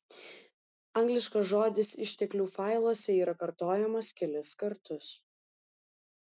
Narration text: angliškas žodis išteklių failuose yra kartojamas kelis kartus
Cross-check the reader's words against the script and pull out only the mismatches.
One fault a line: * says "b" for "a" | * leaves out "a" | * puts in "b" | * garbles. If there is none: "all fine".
all fine